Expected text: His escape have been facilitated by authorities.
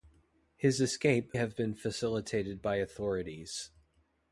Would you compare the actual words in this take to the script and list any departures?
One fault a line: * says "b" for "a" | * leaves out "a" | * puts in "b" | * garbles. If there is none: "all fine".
all fine